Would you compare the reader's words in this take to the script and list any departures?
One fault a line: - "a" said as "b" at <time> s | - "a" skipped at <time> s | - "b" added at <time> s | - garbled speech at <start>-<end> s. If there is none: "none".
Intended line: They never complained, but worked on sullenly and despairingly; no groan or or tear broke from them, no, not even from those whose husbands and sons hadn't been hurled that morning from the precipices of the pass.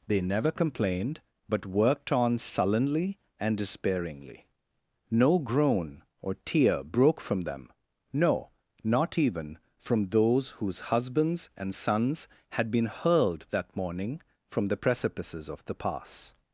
- "or" skipped at 6.3 s
- "hadn't" said as "had" at 12.5 s